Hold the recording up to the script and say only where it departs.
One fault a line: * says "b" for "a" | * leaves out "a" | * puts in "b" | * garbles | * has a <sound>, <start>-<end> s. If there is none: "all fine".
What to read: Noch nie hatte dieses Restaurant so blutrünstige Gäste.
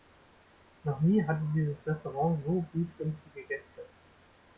all fine